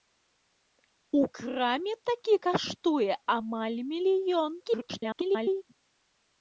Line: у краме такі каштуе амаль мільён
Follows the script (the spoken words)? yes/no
no